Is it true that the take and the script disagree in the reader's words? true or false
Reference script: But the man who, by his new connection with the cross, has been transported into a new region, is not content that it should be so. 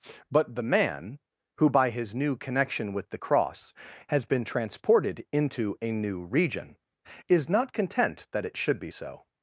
false